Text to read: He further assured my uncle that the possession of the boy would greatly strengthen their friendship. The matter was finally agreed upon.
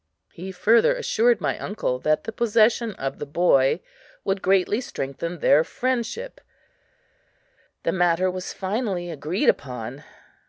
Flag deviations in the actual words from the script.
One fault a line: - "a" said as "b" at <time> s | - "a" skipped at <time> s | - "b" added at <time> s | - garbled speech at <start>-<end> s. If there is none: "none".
none